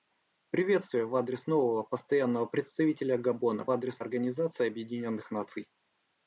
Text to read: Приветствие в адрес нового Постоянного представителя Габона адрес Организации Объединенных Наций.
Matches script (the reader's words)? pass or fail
pass